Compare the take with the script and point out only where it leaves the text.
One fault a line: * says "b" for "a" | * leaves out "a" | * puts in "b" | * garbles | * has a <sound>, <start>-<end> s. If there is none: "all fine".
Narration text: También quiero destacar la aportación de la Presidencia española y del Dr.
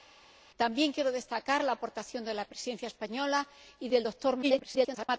* garbles